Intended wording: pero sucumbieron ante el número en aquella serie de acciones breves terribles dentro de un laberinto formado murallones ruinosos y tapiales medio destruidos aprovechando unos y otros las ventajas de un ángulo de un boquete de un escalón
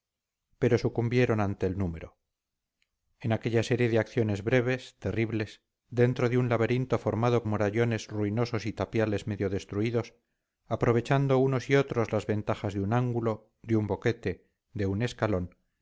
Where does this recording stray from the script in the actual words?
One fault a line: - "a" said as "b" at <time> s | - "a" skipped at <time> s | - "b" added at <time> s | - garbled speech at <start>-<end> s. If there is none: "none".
none